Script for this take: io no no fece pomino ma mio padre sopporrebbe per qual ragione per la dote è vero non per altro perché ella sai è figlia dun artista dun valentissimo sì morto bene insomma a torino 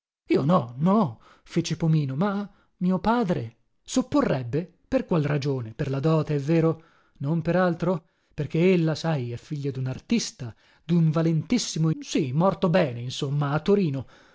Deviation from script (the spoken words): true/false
false